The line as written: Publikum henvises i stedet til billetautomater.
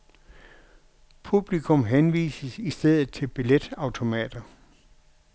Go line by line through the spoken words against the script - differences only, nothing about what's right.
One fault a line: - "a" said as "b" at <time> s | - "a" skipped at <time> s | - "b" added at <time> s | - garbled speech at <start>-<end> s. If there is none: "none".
none